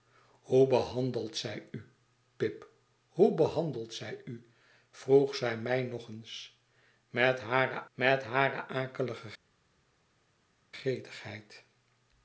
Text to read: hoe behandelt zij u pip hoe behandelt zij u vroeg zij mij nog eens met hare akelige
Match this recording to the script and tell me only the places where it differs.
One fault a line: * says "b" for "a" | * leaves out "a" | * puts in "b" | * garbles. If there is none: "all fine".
* puts in "met hare"